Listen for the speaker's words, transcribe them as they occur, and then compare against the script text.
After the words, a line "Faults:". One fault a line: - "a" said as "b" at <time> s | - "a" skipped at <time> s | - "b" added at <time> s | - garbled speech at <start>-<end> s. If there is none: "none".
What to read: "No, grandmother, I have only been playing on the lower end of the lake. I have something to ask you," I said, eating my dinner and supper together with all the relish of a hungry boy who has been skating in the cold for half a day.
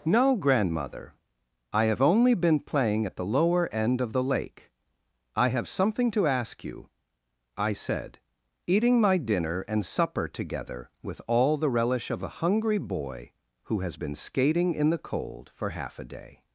"No, grandmother, I have only been playing at the lower end of the lake. I have something to ask you," I said, eating my dinner and supper together with all the relish of a hungry boy who has been skating in the cold for half a day.
Faults:
- "on" said as "at" at 3.0 s